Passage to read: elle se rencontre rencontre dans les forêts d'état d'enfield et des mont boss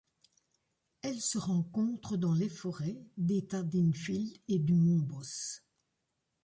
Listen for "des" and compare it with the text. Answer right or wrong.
wrong